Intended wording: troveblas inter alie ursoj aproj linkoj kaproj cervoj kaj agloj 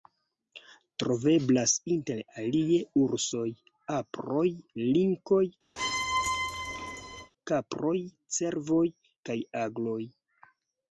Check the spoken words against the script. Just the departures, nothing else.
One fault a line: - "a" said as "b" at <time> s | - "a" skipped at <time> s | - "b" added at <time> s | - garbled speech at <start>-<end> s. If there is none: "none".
none